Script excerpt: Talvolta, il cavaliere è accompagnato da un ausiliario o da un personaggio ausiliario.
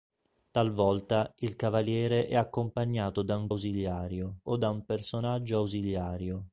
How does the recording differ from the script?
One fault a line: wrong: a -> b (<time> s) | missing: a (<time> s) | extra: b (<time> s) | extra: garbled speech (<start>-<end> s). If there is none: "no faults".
no faults